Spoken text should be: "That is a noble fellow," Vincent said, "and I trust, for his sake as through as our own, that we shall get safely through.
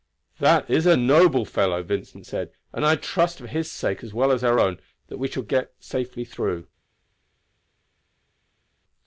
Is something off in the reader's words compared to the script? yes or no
yes